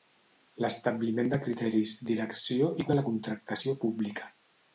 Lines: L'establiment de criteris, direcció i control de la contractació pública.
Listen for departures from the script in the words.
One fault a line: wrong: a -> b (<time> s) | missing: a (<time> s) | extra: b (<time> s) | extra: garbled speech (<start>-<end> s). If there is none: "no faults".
missing: control (2.9 s)